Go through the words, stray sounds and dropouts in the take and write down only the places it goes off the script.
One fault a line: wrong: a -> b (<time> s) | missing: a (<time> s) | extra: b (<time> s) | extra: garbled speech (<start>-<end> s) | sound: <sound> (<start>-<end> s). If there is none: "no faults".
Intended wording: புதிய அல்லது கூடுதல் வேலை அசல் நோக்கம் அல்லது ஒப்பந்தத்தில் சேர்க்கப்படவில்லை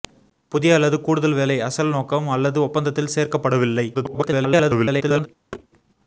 extra: garbled speech (3.9-5.3 s)
sound: thud (5.5-5.7 s)